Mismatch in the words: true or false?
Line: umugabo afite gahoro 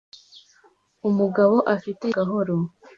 false